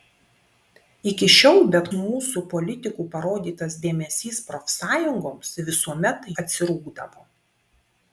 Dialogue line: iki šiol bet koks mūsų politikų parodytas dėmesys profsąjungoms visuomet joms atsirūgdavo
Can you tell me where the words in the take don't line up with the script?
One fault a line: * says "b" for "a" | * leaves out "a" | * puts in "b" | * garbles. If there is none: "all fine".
* leaves out "koks"
* leaves out "joms"